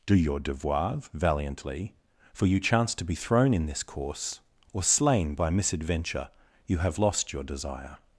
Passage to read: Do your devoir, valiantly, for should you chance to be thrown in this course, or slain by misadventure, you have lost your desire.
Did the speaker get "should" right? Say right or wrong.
wrong